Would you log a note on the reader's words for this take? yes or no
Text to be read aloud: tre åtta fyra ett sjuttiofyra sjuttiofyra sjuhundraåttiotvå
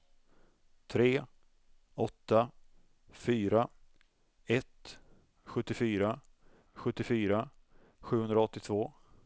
no